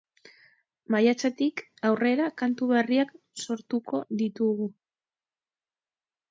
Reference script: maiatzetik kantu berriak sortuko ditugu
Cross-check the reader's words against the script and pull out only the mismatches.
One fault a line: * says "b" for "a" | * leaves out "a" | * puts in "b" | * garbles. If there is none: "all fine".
* puts in "aurrera"